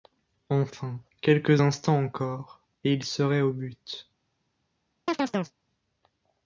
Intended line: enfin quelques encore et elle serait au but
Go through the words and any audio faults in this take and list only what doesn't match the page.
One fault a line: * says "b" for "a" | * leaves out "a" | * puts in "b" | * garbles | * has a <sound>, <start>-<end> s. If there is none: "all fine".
* puts in "instants"
* says "il" for "elle"
* has a chirp, 5.1-5.6 s